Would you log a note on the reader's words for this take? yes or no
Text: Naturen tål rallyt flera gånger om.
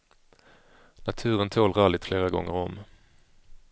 no